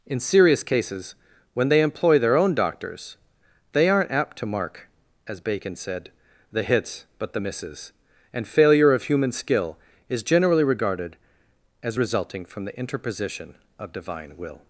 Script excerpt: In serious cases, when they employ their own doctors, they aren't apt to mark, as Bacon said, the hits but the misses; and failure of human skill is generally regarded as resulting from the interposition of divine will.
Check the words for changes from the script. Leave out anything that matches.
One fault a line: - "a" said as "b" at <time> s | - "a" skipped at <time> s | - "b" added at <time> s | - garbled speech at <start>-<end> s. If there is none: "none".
none